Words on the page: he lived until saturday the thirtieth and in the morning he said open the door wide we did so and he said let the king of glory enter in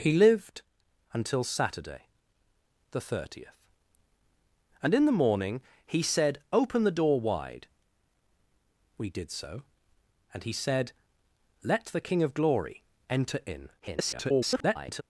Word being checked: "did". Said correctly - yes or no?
yes